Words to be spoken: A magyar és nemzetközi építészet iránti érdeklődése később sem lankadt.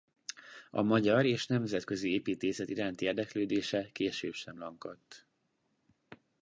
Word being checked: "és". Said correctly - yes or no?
yes